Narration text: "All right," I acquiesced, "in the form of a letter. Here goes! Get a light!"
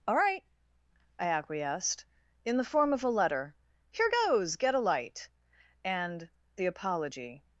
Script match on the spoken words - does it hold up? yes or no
no